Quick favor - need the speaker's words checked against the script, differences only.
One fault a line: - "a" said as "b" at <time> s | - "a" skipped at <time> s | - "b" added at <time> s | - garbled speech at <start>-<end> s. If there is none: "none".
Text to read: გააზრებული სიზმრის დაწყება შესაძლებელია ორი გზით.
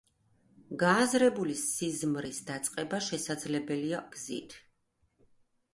- "ორი" skipped at 4.0 s